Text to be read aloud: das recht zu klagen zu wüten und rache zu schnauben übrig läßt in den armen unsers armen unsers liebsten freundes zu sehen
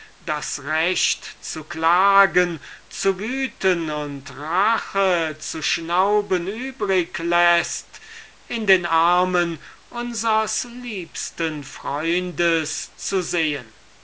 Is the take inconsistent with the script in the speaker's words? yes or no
yes